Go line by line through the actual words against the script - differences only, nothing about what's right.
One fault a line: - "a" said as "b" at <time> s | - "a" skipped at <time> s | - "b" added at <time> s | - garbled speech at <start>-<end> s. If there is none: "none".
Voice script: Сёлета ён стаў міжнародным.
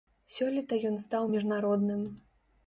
none